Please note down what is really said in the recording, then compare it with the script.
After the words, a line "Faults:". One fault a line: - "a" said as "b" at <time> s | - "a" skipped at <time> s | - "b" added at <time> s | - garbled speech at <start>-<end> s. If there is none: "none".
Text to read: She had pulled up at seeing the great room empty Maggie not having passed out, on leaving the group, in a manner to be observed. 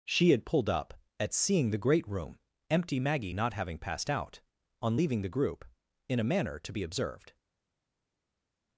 She had pulled up at seeing the great room empty Maggie not having passed out, on leaving the group, in a manner to be observed.
Faults:
none